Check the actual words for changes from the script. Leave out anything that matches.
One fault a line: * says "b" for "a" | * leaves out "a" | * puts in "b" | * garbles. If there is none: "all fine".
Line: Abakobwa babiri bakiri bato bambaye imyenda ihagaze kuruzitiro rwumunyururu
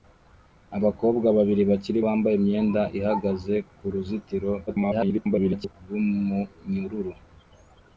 * leaves out "bato"
* garbles